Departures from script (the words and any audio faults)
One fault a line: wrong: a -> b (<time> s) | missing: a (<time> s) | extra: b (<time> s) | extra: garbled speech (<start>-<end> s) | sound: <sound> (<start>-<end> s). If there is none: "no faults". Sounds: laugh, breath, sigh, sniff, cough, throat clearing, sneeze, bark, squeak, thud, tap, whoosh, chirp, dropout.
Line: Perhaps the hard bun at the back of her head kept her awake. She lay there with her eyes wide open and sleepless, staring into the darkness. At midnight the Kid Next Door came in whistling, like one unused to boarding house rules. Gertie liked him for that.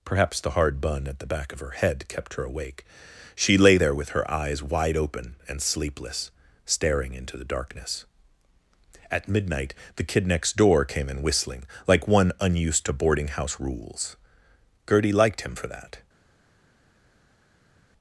no faults